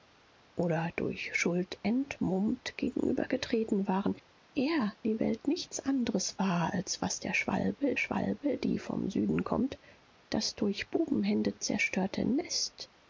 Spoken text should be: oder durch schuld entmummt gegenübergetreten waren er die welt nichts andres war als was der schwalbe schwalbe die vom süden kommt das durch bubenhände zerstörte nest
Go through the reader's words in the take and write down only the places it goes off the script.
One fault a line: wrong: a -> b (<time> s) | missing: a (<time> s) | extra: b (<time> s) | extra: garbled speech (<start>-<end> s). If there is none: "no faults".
no faults